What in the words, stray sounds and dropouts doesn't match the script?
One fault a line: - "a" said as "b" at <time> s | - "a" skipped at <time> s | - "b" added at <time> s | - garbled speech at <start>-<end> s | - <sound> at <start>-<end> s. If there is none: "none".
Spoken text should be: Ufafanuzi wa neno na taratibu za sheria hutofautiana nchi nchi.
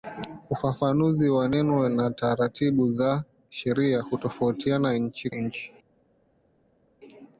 none